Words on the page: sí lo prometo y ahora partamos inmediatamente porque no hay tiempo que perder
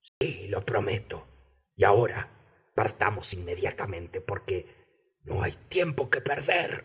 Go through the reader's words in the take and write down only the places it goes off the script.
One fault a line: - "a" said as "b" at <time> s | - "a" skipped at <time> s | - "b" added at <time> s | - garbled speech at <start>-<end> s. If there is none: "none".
none